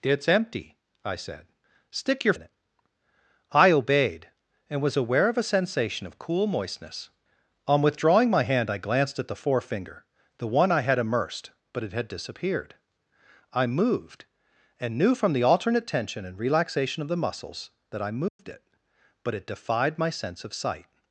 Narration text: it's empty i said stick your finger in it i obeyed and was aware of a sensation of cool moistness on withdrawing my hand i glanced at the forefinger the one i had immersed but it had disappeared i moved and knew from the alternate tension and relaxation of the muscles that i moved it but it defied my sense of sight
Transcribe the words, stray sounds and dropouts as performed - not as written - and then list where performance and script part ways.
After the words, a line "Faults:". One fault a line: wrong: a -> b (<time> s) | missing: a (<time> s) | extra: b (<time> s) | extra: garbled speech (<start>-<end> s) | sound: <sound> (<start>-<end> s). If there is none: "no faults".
it's empty i said stick your in it i obeyed and was aware of a sensation of cool moistness on withdrawing my hand i glanced at the forefinger the one i had immersed but it had disappeared i moved and knew from the alternate tension and relaxation of the muscles that i moved it but it defied my sense of sight
Faults:
missing: finger (2.3 s)
sound: dropout (18.3-18.4 s)